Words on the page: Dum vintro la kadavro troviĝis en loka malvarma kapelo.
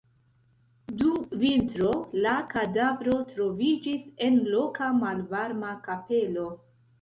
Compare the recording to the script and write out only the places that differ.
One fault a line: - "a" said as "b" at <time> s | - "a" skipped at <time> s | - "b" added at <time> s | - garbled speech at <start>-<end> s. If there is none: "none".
none